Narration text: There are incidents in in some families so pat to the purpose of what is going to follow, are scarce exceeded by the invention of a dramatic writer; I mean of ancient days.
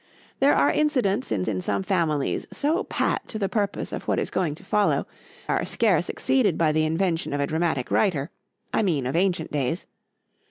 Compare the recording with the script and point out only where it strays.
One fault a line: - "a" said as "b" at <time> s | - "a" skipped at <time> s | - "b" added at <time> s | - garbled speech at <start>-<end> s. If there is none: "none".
none